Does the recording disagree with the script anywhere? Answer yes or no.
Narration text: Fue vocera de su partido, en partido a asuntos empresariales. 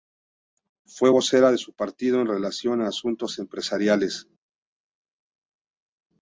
yes